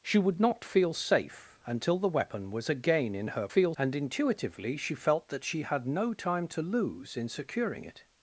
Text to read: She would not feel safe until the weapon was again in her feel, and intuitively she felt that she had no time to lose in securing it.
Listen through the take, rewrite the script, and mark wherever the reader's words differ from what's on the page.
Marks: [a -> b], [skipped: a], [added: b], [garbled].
She would not feel safe until the weapon was again in her feel, and intuitively she felt that she had no time to lose in securing it.